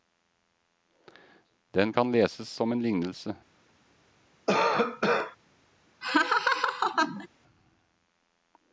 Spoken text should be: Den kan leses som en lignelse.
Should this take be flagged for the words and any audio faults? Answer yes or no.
yes